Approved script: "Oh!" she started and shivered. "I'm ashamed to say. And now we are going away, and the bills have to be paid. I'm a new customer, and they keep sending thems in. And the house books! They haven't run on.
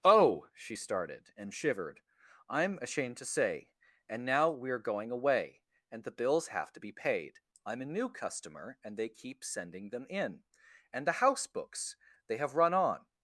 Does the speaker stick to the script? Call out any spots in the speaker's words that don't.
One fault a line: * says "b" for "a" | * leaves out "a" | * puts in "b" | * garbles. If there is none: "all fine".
* says "them" for "thems"
* says "have" for "haven't"